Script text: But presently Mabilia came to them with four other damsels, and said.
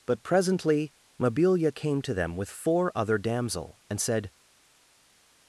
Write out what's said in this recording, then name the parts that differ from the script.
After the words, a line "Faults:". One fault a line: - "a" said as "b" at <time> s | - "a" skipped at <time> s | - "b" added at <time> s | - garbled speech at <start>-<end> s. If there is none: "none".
But presently Mabilia came to them with four other damsel, and said.
Faults:
- "damsels" said as "damsel" at 3.2 s